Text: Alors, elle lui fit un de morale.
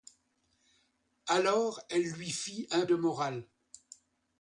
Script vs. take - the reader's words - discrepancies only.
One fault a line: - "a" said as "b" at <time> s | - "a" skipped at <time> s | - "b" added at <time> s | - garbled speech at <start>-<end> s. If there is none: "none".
none